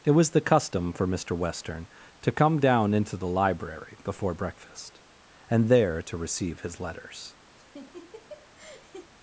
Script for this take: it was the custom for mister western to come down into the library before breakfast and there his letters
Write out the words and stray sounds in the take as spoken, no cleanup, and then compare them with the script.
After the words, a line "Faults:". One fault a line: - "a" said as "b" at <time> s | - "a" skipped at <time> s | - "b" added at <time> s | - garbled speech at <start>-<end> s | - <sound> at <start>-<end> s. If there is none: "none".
it was the custom for mister western to come down into the library before breakfast and there to receive his letters
Faults:
- "to receive" added at 6.0 s
- laugh at 7.6-9.1 s